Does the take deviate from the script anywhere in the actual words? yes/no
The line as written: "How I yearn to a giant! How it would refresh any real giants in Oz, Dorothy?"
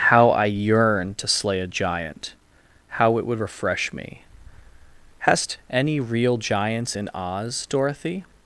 yes